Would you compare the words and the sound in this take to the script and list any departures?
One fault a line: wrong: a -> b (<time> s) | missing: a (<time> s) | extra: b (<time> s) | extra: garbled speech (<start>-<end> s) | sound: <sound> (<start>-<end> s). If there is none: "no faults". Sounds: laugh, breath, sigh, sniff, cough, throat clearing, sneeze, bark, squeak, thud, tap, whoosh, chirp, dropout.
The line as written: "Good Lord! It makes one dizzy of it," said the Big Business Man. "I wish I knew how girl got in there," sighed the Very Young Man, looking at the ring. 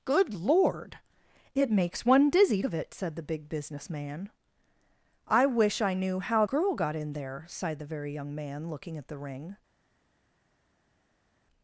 no faults